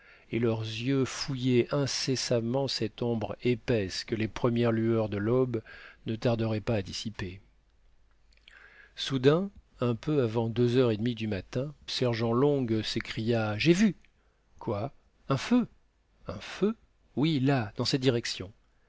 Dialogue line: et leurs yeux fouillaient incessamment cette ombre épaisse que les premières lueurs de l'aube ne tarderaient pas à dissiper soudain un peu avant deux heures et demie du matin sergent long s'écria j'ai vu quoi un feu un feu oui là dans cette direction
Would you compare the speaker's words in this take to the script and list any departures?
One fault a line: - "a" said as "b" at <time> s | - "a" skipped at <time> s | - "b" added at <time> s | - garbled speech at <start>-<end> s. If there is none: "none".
none